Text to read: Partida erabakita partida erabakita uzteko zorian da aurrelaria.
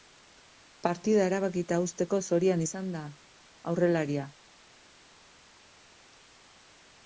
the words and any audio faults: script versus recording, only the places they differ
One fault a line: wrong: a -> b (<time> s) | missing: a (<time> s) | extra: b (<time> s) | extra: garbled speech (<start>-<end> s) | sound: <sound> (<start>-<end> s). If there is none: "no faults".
missing: partida erabakita (1.8 s)
extra: izan (2.6 s)